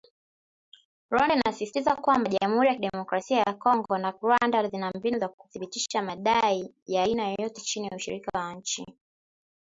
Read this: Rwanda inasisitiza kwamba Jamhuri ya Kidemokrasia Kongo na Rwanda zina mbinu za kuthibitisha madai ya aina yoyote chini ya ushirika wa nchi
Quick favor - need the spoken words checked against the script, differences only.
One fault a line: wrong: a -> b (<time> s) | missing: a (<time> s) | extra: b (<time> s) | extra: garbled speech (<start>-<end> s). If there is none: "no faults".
extra: ya (3.4 s)